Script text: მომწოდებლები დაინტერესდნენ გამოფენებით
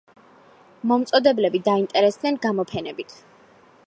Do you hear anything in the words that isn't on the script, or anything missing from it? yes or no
no